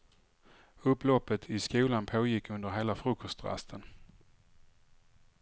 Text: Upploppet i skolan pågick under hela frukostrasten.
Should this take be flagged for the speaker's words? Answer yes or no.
no